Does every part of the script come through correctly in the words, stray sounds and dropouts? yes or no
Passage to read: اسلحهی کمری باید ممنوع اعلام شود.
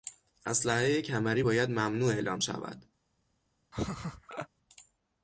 no